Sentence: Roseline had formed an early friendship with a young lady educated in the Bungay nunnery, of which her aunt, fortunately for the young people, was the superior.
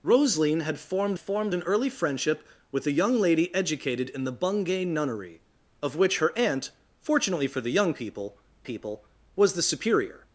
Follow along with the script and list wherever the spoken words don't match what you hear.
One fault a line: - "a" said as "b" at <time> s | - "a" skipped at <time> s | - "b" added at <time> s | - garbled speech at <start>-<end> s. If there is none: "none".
- "formed" added at 1.2 s
- "people" added at 8.6 s